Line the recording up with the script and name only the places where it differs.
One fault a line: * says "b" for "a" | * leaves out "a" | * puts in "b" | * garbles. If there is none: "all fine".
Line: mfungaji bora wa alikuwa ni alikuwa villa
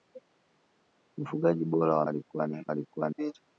all fine